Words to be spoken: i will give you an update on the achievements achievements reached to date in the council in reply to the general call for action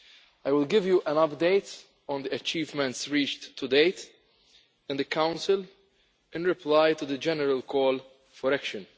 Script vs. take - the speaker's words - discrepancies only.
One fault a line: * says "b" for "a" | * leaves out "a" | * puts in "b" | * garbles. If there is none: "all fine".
* leaves out "achievements"